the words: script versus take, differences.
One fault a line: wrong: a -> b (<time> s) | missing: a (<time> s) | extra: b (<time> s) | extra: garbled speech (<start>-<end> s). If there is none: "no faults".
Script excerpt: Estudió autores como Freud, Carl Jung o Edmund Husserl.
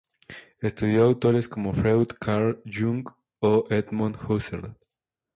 no faults